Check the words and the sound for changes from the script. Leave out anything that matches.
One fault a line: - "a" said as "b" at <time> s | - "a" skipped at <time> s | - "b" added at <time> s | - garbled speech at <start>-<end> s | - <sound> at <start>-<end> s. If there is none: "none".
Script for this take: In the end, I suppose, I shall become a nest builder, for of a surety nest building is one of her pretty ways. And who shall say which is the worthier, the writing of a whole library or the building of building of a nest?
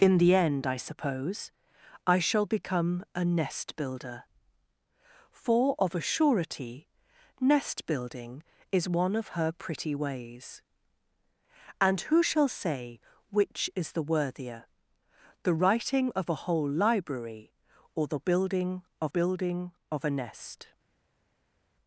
none